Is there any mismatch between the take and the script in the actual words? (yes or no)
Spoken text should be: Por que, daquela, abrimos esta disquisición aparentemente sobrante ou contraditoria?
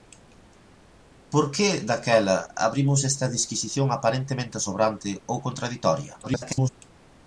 yes